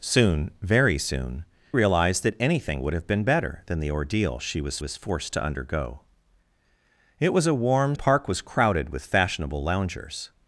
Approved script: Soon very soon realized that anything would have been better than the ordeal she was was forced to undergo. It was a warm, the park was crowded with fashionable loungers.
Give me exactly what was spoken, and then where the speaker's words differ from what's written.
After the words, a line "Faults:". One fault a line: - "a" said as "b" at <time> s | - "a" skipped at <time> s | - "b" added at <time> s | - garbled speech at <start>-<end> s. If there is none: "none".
Soon very soon realized that anything would have been better than the ordeal she was was forced to undergo. It was a warm, the park was crowded with fashionable loungers.
Faults:
none